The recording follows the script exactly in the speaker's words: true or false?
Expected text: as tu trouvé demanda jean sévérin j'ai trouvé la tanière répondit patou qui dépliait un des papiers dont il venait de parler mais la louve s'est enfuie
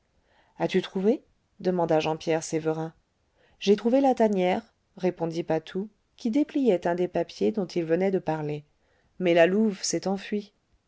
false